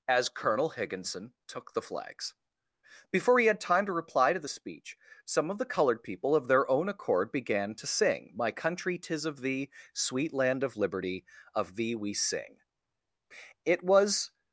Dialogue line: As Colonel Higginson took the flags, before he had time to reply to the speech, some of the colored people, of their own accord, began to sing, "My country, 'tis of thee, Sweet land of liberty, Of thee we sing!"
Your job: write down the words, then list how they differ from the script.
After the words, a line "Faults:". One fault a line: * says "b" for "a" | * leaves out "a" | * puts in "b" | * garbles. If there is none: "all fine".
As Colonel Higginson took the flags, before he had time to reply to the speech, some of the colored people, of their own accord, began to sing, "My country, 'tis of thee, Sweet land of liberty, Of thee we sing!" It was
Faults:
* puts in "It was"